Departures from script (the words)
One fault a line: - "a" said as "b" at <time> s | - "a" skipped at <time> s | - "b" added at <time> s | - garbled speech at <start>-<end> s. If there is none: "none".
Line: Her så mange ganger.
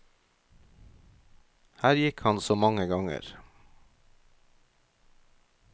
- "gikk han" added at 2.0 s